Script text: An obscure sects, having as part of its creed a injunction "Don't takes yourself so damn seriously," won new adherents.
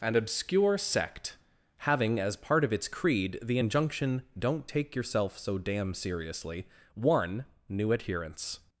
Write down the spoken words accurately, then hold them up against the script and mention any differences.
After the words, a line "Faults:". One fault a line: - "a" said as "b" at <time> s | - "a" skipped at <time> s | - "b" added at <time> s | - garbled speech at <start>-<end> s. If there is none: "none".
An obscure sect, having as part of its creed the injunction "Don't take yourself so damn seriously," won new adherents.
Faults:
- "sects" said as "sect" at 0.8 s
- "a" said as "the" at 3.4 s
- "takes" said as "take" at 4.7 s